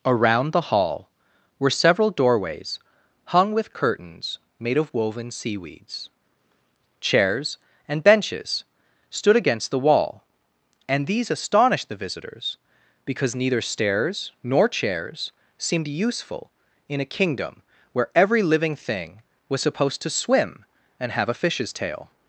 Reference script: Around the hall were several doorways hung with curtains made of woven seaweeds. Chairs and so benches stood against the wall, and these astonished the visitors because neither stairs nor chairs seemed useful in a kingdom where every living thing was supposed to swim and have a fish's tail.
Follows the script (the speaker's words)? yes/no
no